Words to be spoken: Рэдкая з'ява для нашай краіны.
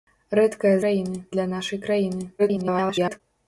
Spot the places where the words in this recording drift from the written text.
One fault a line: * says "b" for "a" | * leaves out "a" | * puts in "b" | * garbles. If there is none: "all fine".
* says "краіны" for "з'ява"
* garbles